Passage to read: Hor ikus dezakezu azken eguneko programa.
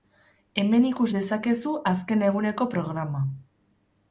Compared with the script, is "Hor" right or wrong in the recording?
wrong